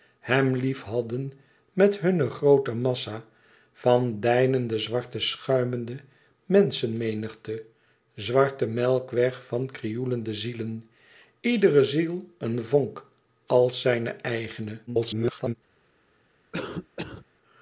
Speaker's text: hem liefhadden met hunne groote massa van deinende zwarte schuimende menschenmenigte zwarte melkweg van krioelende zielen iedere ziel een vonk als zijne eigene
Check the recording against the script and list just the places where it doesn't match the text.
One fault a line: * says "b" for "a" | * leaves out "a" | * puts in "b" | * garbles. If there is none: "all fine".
* garbles